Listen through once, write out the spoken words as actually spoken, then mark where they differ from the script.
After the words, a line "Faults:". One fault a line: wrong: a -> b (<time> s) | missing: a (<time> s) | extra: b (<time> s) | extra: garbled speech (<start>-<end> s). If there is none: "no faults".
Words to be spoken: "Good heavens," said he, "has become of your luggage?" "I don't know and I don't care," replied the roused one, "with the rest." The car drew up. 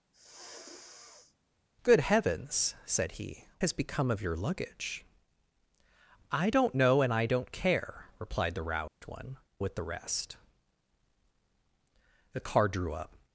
"Good heavens," said he, "has become of your luggage?" "I don't know and I don't care," replied the roused one, "with the rest." The car drew up.
Faults:
no faults